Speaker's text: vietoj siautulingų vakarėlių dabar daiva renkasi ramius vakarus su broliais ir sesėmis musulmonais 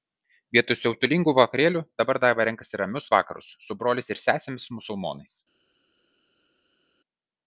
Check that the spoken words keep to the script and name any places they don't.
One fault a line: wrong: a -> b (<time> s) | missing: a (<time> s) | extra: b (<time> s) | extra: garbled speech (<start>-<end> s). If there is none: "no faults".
no faults